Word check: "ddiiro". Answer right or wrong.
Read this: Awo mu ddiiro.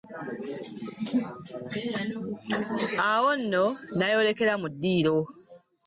right